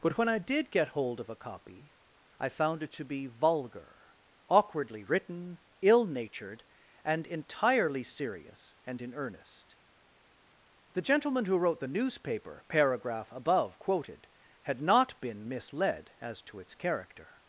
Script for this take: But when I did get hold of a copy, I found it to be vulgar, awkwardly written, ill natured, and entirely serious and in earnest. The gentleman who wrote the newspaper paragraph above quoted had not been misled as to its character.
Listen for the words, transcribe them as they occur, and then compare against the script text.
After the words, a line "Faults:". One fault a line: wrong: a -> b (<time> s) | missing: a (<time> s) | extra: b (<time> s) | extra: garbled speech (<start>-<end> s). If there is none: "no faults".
But when I did get hold of a copy, I found it to be vulgar, awkwardly written, ill natured, and entirely serious and in earnest. The gentleman who wrote the newspaper paragraph above quoted had not been misled as to its character.
Faults:
no faults